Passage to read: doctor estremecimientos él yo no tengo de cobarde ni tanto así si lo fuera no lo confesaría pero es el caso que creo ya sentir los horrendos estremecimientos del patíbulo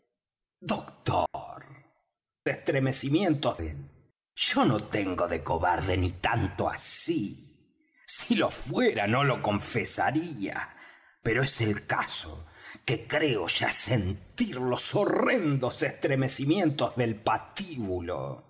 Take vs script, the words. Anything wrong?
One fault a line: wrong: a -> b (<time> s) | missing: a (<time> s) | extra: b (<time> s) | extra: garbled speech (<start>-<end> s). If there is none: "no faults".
no faults